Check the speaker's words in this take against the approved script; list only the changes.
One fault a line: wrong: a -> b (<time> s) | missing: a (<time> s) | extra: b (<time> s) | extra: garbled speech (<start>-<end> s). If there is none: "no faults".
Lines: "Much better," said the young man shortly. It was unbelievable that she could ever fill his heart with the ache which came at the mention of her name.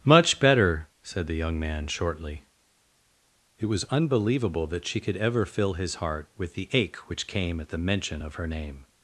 no faults